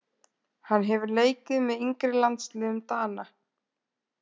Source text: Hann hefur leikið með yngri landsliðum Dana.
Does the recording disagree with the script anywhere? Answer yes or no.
no